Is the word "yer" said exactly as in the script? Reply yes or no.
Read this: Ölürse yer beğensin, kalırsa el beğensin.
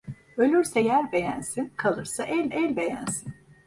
yes